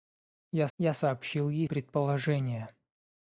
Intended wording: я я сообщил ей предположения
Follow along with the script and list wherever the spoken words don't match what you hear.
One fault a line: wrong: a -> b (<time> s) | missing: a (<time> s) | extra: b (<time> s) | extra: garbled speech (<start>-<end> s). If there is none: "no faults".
no faults